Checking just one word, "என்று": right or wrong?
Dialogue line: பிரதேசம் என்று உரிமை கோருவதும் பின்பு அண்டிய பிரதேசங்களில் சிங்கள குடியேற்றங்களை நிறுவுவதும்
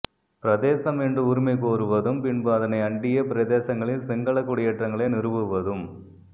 right